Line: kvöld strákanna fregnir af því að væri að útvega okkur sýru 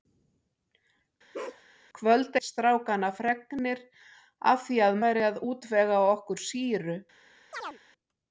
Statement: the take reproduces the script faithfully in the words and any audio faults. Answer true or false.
false